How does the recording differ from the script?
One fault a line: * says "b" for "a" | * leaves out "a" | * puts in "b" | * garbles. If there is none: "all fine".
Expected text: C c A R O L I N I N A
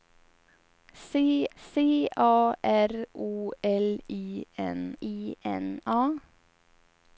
all fine